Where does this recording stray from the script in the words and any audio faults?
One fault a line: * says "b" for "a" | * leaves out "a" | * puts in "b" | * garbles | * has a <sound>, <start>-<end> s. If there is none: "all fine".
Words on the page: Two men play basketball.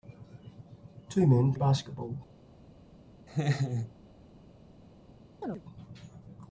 * leaves out "play"
* has a laugh, 3.3-3.9 s
* has a chirp, 5.4-5.6 s